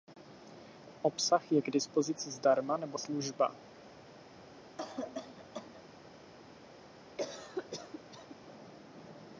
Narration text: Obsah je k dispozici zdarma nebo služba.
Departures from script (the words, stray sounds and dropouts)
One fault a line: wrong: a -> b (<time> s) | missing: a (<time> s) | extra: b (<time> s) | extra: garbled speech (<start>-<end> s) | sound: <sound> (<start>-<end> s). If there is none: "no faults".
sound: cough (4.8-5.8 s)
sound: cough (7.2-8.4 s)